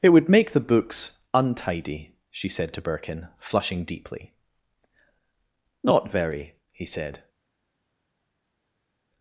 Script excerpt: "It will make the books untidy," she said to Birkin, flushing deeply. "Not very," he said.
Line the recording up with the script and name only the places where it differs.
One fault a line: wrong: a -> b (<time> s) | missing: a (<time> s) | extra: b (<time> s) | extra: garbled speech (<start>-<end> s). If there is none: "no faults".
wrong: will -> would (0.1 s)